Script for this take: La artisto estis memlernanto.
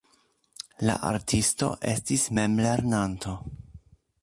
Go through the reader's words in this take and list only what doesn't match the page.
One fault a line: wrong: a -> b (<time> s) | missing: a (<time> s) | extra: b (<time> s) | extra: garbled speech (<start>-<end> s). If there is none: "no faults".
no faults